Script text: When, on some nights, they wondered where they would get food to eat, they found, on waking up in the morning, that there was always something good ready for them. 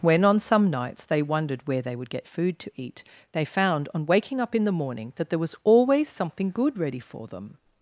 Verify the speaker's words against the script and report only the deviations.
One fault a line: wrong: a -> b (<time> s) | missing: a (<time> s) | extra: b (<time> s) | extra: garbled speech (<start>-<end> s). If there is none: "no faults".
no faults